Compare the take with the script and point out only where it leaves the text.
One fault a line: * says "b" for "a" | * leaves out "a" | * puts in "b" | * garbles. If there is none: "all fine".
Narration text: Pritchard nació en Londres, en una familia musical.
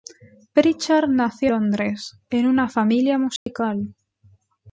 * leaves out "en"